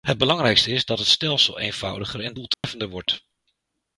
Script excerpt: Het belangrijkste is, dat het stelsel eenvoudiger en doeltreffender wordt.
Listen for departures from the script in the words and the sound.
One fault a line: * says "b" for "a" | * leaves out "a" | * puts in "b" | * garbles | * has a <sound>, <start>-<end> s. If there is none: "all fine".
* has a dropout, 2.5-2.6 s